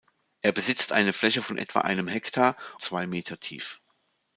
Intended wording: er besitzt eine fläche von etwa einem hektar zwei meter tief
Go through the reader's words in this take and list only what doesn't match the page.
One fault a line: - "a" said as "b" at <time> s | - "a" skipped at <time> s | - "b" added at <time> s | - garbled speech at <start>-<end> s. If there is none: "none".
none